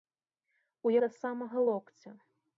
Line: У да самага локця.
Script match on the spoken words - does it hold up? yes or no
yes